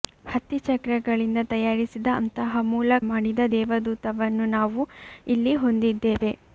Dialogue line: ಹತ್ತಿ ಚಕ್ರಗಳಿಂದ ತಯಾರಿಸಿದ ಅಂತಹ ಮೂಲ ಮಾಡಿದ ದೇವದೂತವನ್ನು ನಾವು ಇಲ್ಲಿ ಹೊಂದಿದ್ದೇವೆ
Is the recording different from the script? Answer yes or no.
no